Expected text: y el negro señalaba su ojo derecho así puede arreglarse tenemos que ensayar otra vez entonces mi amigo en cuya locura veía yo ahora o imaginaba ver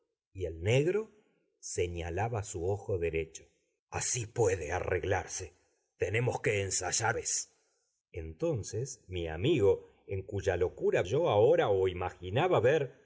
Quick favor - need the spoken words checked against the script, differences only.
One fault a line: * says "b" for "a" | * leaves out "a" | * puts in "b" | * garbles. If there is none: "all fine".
* leaves out "otra"
* leaves out "veía"